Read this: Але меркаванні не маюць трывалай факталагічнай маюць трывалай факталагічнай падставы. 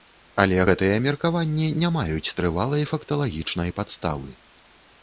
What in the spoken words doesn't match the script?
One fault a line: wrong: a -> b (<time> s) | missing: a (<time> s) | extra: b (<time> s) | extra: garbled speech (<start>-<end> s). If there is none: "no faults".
extra: гэтыя (0.7 s)
missing: маюць трывалай факталагічнай (3.8 s)